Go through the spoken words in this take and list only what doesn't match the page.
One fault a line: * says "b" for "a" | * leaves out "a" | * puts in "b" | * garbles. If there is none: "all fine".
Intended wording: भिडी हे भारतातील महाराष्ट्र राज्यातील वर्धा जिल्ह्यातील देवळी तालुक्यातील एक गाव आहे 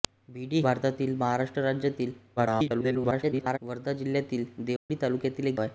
* leaves out "हे"
* garbles
* leaves out "गाव"